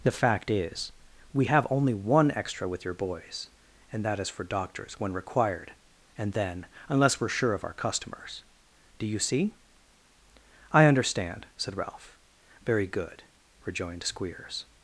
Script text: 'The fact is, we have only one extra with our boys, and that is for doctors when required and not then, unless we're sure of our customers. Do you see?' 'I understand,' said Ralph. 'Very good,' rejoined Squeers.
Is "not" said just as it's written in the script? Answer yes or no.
no